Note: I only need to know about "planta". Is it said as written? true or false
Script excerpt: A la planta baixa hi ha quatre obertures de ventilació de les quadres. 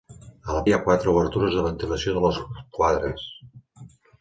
false